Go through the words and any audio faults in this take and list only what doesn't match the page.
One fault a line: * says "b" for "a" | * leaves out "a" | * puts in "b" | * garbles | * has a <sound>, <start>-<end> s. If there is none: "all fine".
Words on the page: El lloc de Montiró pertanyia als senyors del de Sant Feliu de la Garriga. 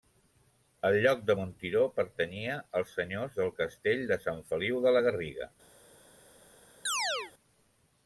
* puts in "castell"
* has a chirp, 6.9-7.3 s